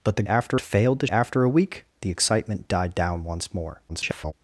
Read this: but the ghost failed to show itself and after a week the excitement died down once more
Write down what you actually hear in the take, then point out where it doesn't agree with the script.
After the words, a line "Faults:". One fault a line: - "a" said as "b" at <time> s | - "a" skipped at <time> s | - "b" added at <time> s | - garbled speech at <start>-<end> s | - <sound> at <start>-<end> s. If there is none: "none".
but the after failed to after a week the excitement died down once more [garbled]
Faults:
- "ghost" said as "after" at 0.3 s
- "show itself and" skipped at 1.1 s
- garbled speech at 3.9-4.3 s